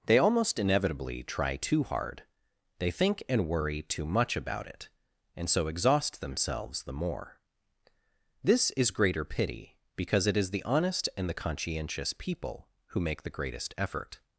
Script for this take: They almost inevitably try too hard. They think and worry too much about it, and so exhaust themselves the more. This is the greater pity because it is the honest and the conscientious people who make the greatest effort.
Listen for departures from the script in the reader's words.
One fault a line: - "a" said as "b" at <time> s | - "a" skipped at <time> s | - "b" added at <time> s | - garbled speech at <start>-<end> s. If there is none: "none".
- "the" skipped at 8.9 s